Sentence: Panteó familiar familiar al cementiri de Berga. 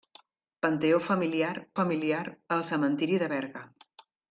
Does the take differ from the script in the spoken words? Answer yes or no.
no